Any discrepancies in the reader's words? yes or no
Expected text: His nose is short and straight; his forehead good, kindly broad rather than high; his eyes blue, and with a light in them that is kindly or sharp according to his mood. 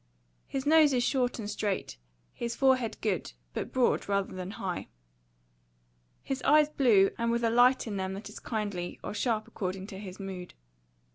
yes